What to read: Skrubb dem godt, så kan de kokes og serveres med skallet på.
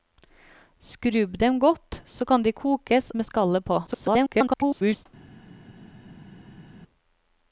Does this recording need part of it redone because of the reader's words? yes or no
yes